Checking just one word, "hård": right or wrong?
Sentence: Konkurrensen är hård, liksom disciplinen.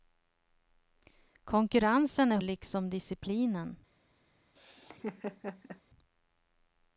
wrong